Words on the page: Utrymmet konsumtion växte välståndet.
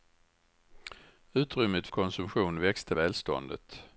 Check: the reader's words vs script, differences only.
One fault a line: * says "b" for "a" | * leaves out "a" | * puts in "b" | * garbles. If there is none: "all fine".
all fine